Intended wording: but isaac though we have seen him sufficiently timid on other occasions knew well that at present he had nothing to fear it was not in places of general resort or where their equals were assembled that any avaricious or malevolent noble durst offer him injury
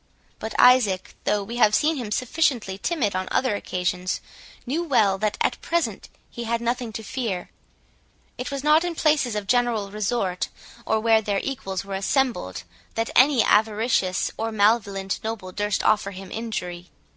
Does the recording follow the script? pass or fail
pass